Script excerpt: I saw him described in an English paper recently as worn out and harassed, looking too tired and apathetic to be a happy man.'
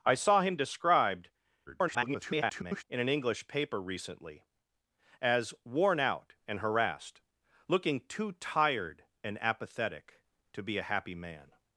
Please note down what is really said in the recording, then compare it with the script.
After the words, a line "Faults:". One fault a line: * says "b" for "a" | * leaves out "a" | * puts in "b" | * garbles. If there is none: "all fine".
I saw him described [garbled] in an English paper recently as worn out and harassed, looking too tired and apathetic to be a happy man.'
Faults:
* garbles